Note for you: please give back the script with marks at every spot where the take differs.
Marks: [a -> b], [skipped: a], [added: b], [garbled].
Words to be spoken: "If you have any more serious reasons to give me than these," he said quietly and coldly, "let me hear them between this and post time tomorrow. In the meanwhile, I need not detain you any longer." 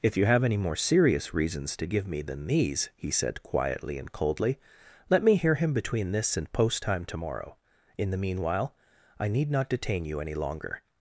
"If you have any more serious reasons to give me than these," he said quietly and coldly, "let me hear [them -> him] between this and post time tomorrow. In the meanwhile, I need not detain you any longer."